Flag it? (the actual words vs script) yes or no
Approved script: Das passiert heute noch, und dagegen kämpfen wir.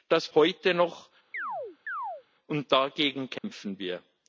yes